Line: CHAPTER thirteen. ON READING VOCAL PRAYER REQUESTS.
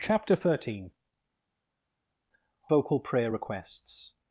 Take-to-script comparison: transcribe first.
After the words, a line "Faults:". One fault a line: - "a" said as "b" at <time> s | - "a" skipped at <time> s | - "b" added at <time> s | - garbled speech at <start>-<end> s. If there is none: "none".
CHAPTER thirteen. VOCAL PRAYER REQUESTS.
Faults:
- "ON READING" skipped at 0.9 s